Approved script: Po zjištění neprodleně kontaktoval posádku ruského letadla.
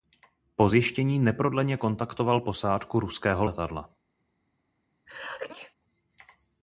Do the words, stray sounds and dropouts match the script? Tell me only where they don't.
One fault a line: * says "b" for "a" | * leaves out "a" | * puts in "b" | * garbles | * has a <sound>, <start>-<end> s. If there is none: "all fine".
* has a sneeze, 5.1-5.7 s